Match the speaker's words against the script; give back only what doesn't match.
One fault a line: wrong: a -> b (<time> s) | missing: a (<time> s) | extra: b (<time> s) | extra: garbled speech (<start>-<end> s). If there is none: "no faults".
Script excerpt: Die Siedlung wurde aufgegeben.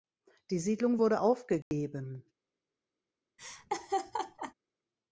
no faults